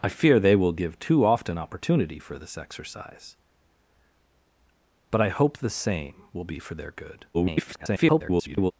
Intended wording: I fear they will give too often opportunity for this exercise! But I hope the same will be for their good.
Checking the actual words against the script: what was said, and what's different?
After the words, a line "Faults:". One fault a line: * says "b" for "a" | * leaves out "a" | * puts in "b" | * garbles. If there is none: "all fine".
I fear they will give too often opportunity for this exercise! But I hope the same will be for their good. [garbled]
Faults:
* garbles